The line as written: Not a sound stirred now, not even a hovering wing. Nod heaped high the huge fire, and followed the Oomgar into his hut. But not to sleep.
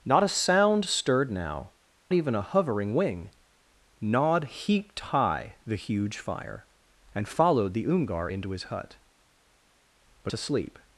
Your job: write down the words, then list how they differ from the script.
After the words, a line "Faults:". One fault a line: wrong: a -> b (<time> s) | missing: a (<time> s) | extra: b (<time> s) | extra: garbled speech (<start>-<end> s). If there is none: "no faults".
Not a sound stirred now, even a hovering wing. Nod heaped high the huge fire, and followed the Oomgar into his hut. But to sleep.
Faults:
missing: not (1.7 s)
missing: not (10.3 s)